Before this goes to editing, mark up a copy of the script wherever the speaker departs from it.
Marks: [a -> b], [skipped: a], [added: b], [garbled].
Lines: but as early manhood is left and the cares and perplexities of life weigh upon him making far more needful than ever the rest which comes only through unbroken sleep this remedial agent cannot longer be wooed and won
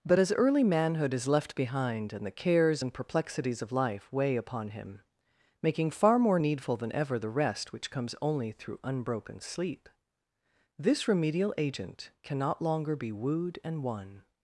but as early manhood is left [added: behind] and the cares and perplexities of life weigh upon him making far more needful than ever the rest which comes only through unbroken sleep this remedial agent cannot longer be wooed and won